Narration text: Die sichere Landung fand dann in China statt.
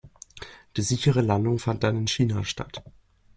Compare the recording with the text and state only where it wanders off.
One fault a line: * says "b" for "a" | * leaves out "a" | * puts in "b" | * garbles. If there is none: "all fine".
all fine